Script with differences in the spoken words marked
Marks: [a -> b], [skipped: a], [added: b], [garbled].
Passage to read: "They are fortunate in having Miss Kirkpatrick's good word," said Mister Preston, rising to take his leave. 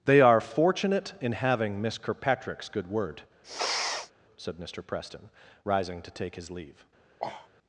"They are fortunate in having Miss Kirkpatrick's good word," said Mister Preston, rising to take his leave.